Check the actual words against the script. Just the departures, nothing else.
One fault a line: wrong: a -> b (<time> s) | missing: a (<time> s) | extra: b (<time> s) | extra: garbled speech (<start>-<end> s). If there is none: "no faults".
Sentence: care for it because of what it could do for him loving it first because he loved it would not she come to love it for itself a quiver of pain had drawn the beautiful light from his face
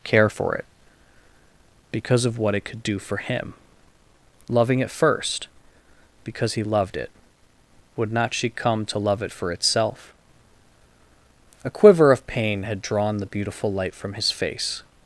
no faults